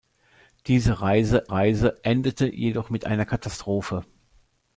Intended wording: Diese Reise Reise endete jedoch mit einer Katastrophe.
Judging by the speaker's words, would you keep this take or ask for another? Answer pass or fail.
pass